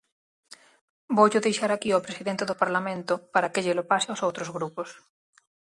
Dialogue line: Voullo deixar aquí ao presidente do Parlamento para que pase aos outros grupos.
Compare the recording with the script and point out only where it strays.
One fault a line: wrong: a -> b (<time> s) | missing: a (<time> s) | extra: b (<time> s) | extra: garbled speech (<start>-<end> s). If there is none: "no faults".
extra: llelo (3.6 s)